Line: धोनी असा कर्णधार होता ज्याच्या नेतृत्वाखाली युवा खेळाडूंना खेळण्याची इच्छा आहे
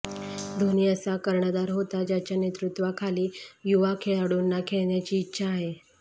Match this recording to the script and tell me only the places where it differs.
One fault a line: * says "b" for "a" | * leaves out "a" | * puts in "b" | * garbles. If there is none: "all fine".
all fine